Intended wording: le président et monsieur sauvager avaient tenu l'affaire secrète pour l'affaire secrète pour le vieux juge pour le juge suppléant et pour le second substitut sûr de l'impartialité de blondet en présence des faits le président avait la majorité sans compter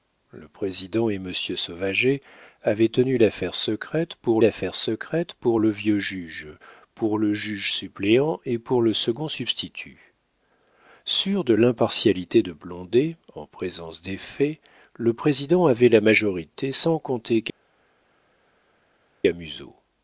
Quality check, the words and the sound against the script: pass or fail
pass